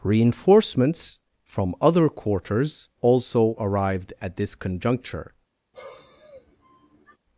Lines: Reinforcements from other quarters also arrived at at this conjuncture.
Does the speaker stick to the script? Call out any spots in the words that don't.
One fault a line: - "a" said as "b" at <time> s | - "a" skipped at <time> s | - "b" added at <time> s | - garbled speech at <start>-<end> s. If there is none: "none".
- "at" skipped at 4.4 s